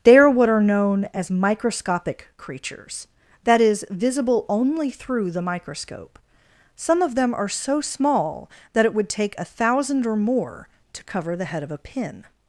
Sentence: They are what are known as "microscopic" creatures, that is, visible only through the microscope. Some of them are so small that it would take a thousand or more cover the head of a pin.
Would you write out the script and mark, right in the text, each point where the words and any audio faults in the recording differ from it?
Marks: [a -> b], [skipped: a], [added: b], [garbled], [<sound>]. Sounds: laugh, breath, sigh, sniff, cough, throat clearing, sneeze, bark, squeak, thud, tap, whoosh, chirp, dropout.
They are what are known as "microscopic" creatures, that is, visible only through the microscope. Some of them are so small that it would take a thousand or more [added: to] cover the head of a pin.